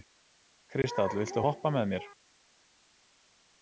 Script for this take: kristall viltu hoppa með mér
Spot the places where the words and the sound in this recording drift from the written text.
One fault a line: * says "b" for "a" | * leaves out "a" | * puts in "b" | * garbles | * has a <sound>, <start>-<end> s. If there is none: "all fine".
all fine